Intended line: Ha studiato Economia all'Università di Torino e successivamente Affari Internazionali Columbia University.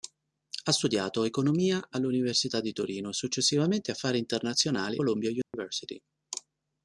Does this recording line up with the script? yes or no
yes